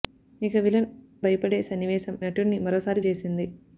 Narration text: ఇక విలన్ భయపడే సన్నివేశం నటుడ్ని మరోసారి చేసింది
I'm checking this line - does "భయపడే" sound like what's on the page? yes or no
yes